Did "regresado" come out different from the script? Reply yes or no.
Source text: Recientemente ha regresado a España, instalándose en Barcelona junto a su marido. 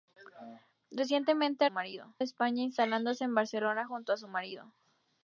yes